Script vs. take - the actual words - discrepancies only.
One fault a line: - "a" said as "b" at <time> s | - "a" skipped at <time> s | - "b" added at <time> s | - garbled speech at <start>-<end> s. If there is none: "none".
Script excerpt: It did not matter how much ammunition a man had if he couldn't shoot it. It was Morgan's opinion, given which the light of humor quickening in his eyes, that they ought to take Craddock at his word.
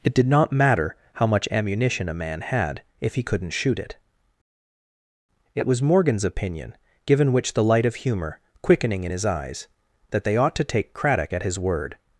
none